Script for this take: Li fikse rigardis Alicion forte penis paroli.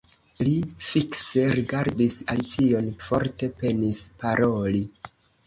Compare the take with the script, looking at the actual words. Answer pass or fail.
pass